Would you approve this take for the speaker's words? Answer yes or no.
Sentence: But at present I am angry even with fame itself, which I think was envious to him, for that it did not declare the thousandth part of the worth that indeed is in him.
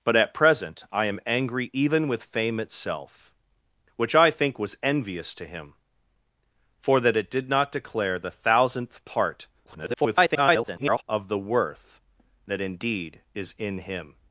no